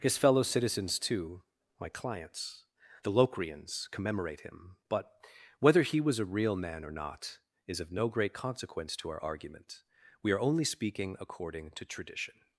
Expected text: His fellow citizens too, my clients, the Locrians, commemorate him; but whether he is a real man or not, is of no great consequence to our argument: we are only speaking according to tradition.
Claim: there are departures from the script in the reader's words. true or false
true